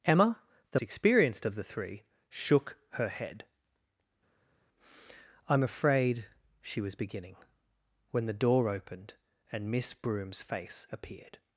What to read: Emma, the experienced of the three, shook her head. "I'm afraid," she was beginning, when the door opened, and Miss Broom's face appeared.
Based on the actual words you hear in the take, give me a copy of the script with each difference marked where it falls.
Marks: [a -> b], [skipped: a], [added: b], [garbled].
Emma, the experienced of the three, shook her head. "I'm afraid," she was beginning, when the door opened, and Miss Broom's face appeared.